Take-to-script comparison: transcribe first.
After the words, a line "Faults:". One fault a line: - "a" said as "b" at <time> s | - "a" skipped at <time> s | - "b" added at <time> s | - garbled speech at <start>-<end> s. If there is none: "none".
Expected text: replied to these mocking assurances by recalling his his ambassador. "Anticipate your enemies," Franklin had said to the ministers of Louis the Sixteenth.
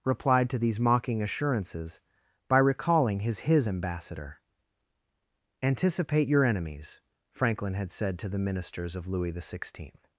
replied to these mocking assurances by recalling his his ambassador. "Anticipate your enemies," Franklin had said to the ministers of Louis the Sixteenth.
Faults:
none